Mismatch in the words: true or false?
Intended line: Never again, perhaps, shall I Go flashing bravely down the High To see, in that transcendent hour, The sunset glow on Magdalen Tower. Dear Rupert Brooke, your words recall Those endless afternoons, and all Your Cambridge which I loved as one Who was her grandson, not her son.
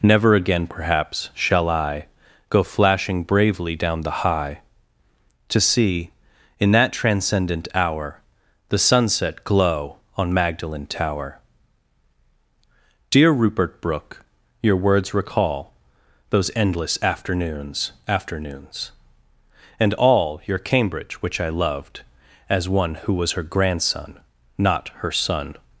true